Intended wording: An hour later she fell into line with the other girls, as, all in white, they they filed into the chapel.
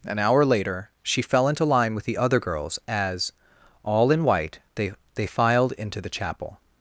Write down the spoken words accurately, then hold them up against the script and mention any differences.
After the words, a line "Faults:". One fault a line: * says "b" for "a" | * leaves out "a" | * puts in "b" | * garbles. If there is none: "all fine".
An hour later she fell into line with the other girls, as, all in white, they they filed into the chapel.
Faults:
all fine